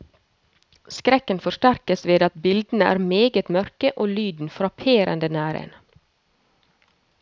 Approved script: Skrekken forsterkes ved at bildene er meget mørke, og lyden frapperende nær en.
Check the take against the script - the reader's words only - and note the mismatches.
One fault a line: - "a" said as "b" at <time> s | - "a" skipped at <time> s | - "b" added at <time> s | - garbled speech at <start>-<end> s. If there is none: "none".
none